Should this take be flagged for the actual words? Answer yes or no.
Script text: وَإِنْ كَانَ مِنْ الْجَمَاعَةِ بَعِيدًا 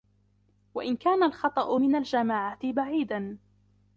yes